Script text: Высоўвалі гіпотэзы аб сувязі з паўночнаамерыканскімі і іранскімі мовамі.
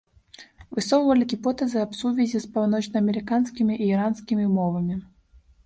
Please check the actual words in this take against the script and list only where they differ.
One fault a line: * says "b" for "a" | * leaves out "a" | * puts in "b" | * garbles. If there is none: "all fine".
all fine